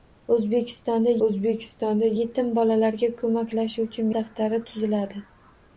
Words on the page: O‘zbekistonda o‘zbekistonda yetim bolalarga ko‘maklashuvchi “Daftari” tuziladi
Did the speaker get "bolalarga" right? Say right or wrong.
right